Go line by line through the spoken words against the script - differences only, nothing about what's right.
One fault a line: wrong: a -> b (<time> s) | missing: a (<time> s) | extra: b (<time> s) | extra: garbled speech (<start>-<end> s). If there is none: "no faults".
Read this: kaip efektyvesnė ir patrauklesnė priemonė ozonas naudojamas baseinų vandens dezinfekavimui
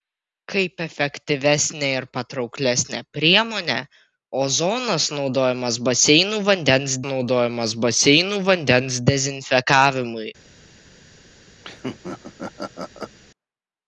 extra: naudojamas baseinų vandens (7.1 s)